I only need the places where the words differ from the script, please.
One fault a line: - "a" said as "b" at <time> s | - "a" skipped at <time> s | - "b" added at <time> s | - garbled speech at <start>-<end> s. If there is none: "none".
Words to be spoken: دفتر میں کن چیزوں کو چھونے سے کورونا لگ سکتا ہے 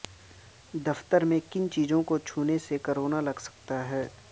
none